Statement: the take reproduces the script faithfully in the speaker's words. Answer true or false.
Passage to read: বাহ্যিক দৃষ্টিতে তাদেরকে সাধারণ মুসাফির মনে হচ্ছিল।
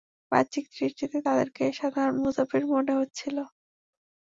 true